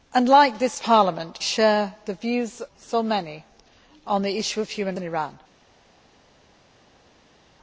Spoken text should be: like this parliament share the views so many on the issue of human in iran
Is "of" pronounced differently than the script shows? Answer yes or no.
no